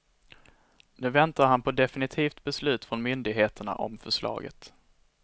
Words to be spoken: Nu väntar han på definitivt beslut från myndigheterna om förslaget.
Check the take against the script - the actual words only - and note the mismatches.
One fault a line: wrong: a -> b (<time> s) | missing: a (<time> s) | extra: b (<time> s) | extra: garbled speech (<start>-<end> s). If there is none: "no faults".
no faults